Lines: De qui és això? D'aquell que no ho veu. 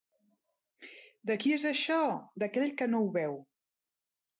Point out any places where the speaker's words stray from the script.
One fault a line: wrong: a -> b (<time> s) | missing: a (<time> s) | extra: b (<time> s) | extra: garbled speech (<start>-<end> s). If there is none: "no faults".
no faults